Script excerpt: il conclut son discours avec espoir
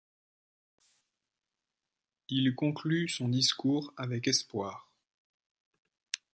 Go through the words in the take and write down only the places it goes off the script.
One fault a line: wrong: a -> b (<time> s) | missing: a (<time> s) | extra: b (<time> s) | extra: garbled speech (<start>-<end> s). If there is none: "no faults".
no faults